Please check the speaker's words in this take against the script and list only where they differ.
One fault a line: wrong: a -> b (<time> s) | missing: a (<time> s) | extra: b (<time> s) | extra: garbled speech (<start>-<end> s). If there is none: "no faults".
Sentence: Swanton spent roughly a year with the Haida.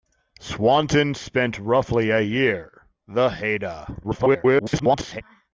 missing: with (2.9 s)
extra: garbled speech (4.0-5.2 s)